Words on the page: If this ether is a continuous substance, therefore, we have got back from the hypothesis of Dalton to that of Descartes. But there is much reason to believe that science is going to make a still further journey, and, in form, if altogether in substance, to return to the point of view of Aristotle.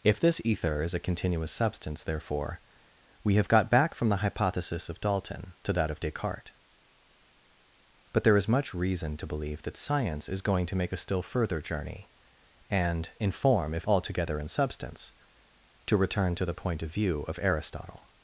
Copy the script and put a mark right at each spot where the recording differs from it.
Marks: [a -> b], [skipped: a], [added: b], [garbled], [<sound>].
If this ether is a continuous substance, therefore, we have got back from the hypothesis of Dalton to that of Descartes. But there is much reason to believe that science is going to make a still further journey, and, in form, if altogether in substance, to return to the point of view of Aristotle.